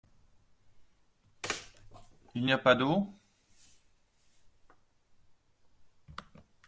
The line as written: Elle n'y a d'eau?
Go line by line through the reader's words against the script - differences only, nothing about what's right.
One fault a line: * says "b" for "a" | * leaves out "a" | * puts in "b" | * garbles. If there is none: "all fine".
* says "Il" for "Elle"
* puts in "pas"